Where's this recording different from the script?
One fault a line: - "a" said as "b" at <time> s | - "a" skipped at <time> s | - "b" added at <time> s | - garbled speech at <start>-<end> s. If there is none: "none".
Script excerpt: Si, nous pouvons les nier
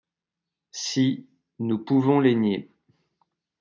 none